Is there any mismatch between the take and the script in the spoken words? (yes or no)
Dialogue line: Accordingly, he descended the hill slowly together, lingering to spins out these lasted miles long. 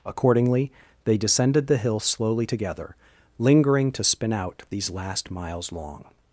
yes